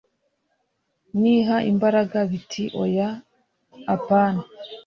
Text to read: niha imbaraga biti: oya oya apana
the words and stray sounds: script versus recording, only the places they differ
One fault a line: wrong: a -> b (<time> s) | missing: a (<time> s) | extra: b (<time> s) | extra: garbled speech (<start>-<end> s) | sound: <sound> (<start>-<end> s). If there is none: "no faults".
missing: oya (3.1 s)